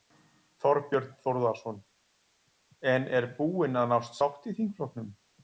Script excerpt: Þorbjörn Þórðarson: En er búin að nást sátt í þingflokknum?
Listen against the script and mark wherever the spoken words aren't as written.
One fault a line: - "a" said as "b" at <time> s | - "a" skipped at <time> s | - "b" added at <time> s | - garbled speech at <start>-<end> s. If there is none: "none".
none